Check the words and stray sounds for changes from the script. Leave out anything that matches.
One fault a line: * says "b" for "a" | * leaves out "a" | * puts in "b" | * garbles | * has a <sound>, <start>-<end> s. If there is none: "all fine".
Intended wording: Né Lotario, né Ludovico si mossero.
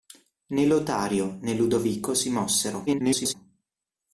* garbles